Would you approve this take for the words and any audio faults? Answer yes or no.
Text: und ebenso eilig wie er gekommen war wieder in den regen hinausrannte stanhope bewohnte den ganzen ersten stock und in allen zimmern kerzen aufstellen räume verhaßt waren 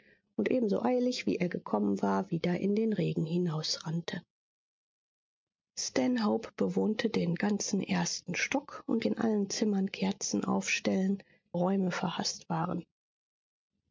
yes